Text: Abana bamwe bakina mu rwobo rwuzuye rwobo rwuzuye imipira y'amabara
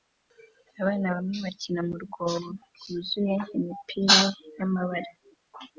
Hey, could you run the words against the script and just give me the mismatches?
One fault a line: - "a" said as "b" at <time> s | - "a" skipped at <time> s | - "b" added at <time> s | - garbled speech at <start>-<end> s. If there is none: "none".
- "rwobo rwuzuye" skipped at 3.4 s